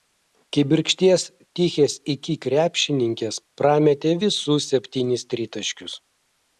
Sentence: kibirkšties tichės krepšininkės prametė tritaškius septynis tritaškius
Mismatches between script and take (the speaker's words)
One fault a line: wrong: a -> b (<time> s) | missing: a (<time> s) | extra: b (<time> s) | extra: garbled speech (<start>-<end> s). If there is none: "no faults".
extra: iki (2.1 s)
wrong: tritaškius -> visus (4.2 s)